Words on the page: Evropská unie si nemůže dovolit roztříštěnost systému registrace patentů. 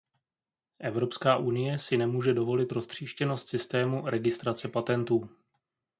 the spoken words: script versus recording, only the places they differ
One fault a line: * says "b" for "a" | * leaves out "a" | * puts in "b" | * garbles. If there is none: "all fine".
all fine